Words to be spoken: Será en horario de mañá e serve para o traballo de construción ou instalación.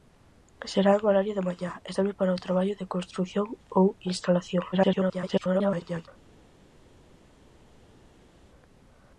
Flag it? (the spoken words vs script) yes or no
yes